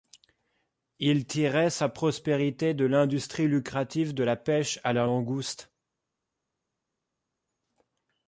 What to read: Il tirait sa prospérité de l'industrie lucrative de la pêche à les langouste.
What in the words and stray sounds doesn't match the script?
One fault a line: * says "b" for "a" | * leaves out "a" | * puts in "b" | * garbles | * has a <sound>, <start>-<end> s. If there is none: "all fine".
* says "la" for "les"